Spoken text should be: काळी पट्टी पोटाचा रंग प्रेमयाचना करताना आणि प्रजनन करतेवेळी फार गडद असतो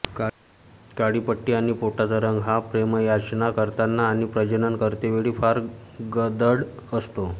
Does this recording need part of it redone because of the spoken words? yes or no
yes